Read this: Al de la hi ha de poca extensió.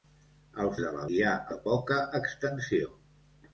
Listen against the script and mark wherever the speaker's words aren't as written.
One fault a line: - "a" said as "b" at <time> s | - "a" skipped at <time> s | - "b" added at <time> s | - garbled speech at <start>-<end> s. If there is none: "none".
none